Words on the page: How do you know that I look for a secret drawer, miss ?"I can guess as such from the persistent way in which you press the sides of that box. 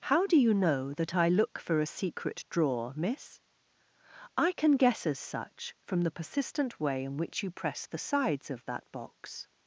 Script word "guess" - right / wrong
right